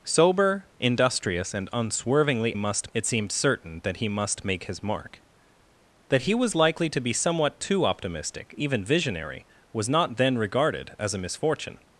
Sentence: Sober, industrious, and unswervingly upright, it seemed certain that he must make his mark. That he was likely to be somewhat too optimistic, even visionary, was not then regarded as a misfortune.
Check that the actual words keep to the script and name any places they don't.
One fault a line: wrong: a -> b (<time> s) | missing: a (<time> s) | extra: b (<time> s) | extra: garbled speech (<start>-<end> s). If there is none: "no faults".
wrong: upright -> must (2.5 s)